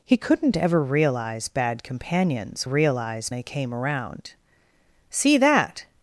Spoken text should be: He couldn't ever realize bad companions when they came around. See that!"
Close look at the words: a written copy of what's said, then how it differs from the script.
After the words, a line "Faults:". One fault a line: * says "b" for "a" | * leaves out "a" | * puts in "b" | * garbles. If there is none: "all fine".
He couldn't ever realize bad companions realize they came around. See that!"
Faults:
* says "realize" for "when"